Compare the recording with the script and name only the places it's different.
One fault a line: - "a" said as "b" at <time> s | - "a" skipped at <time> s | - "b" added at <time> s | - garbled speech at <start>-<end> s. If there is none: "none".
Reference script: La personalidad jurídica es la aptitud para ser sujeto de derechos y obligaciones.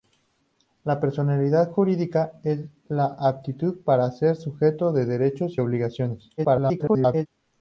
- garbled speech at 6.4-7.3 s